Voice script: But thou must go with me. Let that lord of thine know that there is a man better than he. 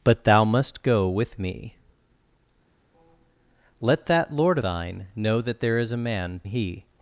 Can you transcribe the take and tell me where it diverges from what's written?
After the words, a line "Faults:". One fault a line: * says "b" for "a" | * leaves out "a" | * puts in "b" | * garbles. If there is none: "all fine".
But thou must go with me. Let that lord thine know that there is a man he.
Faults:
* leaves out "of"
* leaves out "better than"